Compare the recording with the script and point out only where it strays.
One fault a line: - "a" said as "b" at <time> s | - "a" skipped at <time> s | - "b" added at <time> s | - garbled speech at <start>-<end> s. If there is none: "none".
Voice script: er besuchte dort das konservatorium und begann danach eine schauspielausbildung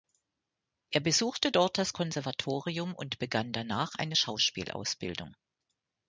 none